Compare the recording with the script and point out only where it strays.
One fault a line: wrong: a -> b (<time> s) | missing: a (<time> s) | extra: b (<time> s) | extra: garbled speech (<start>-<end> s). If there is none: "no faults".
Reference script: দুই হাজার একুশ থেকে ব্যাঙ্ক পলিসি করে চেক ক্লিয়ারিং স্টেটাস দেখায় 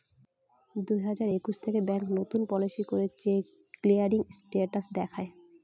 extra: নতুন (2.2 s)